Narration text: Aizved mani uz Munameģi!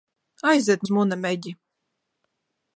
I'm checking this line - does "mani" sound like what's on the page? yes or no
no